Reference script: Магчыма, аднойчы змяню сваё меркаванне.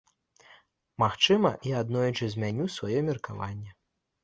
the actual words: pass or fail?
fail